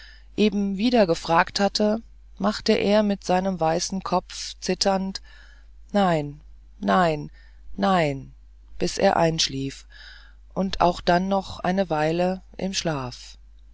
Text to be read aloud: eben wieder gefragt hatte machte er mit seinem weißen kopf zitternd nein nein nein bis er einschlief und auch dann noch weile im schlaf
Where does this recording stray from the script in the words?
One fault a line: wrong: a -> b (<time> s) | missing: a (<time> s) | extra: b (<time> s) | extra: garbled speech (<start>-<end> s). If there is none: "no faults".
extra: eine (11.6 s)